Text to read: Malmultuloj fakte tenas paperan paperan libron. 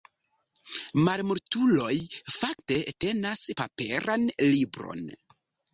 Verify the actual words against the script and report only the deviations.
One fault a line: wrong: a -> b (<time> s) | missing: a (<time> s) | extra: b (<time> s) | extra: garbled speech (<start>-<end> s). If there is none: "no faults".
missing: paperan (4.3 s)